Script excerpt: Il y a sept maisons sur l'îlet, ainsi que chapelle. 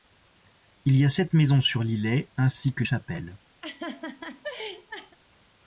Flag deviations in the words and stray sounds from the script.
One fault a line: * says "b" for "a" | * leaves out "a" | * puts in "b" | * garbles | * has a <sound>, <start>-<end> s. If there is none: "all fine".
* has a laugh, 3.6-5.2 s